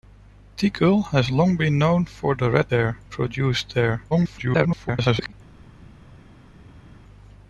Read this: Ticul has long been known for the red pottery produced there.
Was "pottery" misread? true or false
true